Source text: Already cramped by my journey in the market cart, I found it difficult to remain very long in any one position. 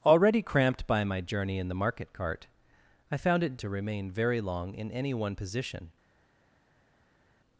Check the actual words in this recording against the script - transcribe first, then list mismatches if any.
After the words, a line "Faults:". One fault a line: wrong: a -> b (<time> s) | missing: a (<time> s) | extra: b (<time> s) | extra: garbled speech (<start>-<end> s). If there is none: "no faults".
Already cramped by my journey in the market cart, I found it to remain very long in any one position.
Faults:
missing: difficult (3.5 s)